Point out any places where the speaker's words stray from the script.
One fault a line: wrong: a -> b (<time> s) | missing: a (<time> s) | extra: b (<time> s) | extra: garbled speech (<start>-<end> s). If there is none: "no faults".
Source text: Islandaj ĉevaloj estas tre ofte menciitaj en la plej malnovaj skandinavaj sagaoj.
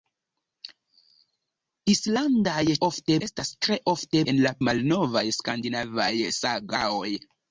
wrong: ĉevaloj -> ofte (2.9 s)
missing: menciitaj (4.2 s)
missing: plej (4.5 s)